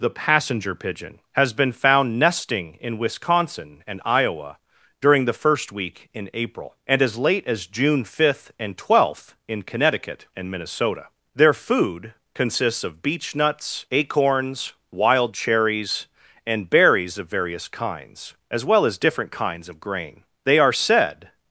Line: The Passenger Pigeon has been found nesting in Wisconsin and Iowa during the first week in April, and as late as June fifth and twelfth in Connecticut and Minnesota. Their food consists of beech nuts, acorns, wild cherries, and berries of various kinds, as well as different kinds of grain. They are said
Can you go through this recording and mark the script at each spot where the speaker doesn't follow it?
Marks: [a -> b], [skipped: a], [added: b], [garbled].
The Passenger Pigeon has been found nesting in Wisconsin and Iowa during the first week in April, and as late as June fifth and twelfth in Connecticut and Minnesota. Their food consists of beech nuts, acorns, wild cherries, and berries of various kinds, as well as different kinds of grain. They are said